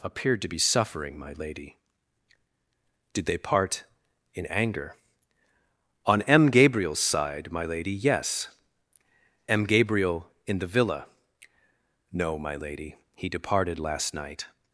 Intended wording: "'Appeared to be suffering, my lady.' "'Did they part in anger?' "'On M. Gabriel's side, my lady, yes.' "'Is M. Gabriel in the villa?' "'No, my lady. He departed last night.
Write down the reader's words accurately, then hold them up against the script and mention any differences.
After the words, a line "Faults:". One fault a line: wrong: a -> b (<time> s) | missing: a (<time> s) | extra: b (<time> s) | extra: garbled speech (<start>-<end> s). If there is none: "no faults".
"'Appeared to be suffering, my lady.' "'Did they part in anger?' "'On M. Gabriel's side, my lady, yes.' "'M. Gabriel in the villa?' "'No, my lady. He departed last night.
Faults:
missing: Is (8.5 s)